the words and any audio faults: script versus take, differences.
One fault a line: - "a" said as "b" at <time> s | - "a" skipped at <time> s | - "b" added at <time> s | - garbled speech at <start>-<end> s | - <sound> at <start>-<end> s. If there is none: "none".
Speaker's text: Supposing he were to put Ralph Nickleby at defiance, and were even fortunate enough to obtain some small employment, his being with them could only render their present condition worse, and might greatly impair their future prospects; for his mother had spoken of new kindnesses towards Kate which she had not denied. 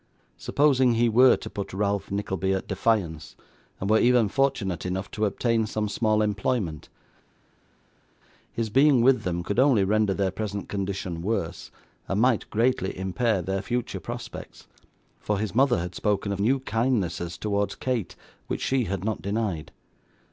none